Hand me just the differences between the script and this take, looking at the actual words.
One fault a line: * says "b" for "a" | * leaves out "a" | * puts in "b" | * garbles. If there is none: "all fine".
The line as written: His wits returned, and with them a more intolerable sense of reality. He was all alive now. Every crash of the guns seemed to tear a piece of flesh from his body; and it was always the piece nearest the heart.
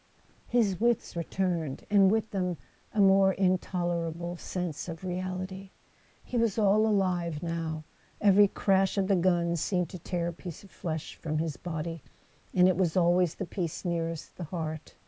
all fine